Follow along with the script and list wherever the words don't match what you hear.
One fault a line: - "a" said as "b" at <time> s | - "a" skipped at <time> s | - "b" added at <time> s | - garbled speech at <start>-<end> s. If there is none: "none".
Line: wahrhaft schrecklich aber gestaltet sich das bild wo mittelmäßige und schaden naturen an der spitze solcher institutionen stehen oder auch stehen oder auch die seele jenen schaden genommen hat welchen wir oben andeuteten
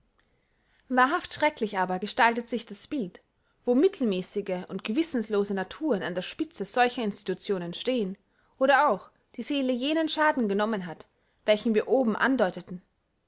- "schaden" said as "gewissenlose" at 4.8 s
- "stehen oder auch" skipped at 9.1 s